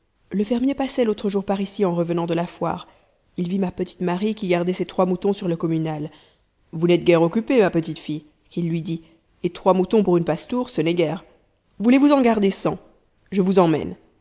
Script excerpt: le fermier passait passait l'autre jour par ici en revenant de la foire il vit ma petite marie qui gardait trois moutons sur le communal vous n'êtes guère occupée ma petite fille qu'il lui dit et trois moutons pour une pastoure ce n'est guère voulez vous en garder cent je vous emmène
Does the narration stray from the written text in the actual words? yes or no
yes